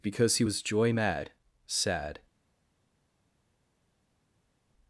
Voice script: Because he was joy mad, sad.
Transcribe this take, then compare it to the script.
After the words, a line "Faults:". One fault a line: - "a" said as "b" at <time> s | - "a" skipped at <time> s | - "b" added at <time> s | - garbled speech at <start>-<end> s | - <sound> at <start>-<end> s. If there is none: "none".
Because he was joy mad, sad.
Faults:
none